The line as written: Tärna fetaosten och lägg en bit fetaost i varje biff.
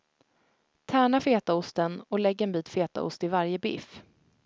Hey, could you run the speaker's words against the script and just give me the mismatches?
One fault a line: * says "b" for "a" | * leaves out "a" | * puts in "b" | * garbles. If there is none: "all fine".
all fine